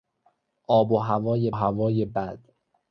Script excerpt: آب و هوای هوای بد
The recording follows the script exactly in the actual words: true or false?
true